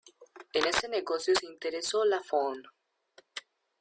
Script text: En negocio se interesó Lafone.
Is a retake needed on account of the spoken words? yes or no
yes